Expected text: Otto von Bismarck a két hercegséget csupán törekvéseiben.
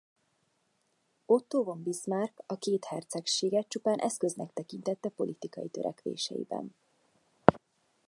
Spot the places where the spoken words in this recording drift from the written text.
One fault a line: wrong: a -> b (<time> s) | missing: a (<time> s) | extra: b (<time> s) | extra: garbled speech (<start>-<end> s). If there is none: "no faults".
extra: eszköznek tekintette politikai (4.0 s)